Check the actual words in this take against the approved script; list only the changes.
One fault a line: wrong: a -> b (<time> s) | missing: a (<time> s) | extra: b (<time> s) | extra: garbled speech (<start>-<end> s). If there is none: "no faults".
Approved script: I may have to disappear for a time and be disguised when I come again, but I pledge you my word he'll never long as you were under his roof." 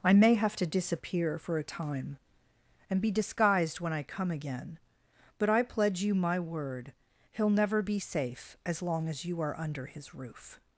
extra: be safe as (7.8 s)
wrong: were -> are (9.4 s)